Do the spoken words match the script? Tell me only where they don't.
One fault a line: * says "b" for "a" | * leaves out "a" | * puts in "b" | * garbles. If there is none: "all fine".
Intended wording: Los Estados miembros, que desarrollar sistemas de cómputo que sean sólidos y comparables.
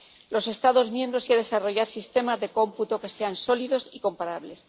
all fine